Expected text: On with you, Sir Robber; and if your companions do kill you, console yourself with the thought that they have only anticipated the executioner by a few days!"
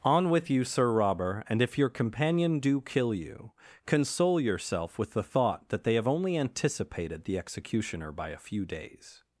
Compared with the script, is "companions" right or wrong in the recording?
wrong